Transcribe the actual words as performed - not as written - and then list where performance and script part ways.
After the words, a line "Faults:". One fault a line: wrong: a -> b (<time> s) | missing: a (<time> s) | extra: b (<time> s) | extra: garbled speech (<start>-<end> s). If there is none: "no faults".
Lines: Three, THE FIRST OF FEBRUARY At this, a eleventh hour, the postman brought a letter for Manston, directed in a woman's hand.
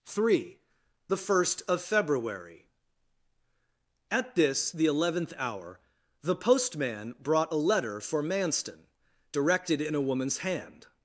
Three, THE FIRST OF FEBRUARY At this, the eleventh hour, the postman brought a letter for Manston, directed in a woman's hand.
Faults:
wrong: a -> the (4.7 s)